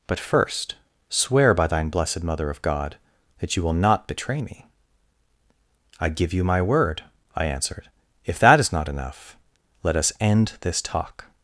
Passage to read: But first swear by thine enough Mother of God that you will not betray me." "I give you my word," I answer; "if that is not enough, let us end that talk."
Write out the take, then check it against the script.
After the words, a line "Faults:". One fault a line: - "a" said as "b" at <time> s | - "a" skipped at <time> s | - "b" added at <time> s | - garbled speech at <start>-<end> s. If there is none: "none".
But first swear by thine blessed Mother of God that you will not betray me." "I give you my word," I answered; "if that is not enough, let us end this talk."
Faults:
- "enough" said as "blessed" at 1.9 s
- "answer" said as "answered" at 7.5 s
- "that" said as "this" at 10.6 s